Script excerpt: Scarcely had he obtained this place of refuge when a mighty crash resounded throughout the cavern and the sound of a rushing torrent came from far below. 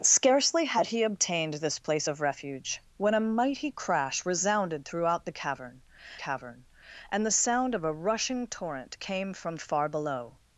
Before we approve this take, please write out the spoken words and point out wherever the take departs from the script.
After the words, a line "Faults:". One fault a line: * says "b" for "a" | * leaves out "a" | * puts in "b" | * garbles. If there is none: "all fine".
Scarcely had he obtained this place of refuge when a mighty crash resounded throughout the cavern cavern and the sound of a rushing torrent came from far below.
Faults:
* puts in "cavern"